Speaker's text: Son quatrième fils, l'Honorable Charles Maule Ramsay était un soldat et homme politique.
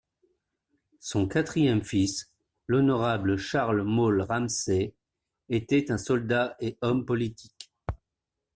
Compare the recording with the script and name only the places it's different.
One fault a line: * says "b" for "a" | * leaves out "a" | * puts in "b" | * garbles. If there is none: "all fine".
all fine